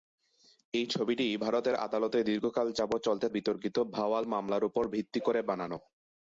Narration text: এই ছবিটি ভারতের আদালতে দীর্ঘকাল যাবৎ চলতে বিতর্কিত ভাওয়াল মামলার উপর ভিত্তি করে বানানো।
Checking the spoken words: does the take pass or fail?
pass